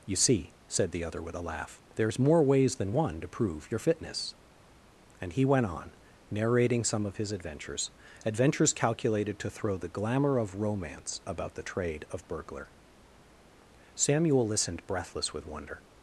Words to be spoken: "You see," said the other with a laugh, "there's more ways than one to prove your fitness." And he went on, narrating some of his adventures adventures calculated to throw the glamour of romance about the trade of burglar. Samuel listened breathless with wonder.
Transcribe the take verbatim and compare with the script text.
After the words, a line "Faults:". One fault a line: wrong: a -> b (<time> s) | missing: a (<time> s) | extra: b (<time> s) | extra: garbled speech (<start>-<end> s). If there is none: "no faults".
"You see," said the other with a laugh, "there's more ways than one to prove your fitness." And he went on, narrating some of his adventures adventures calculated to throw the glamour of romance about the trade of burglar. Samuel listened breathless with wonder.
Faults:
no faults